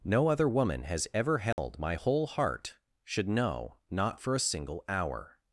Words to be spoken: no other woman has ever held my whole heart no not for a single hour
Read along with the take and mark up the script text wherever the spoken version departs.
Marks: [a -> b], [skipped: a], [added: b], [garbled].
no other woman has ever held my whole heart [no -> should know] not for a single hour